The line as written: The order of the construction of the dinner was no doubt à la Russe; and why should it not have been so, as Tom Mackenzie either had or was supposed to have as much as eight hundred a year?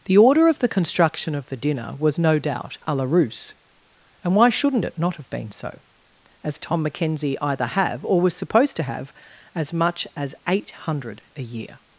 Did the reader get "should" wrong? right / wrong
wrong